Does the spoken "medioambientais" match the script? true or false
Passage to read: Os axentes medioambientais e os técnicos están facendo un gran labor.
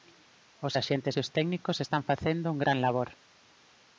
false